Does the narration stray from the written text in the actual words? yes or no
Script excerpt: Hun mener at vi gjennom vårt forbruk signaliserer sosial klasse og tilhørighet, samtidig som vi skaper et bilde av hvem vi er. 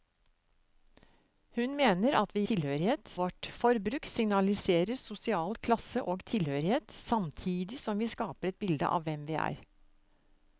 yes